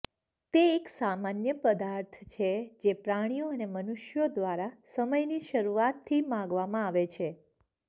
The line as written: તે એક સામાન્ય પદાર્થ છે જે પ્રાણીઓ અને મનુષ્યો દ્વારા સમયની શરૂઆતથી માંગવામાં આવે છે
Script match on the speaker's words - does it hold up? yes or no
yes